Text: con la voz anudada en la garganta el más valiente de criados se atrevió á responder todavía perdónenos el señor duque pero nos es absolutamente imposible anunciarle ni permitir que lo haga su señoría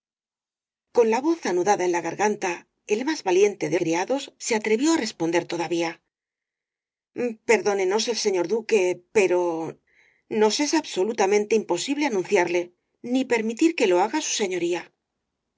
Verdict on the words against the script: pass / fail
pass